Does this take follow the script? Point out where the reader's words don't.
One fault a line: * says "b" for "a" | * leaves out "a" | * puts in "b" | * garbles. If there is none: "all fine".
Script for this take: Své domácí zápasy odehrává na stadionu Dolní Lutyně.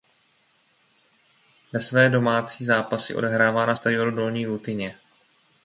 all fine